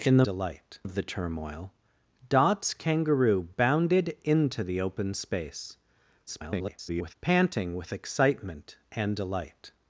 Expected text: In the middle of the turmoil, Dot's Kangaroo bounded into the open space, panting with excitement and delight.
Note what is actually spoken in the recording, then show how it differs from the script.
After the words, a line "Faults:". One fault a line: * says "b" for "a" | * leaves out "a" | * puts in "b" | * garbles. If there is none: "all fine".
In the delight of the turmoil, Dot's Kangaroo bounded into the open space, [garbled] panting with excitement and delight.
Faults:
* says "delight" for "middle"
* garbles